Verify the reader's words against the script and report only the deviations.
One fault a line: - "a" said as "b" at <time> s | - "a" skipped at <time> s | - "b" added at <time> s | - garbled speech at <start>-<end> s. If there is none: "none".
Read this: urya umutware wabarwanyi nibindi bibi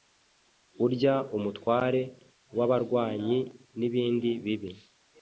none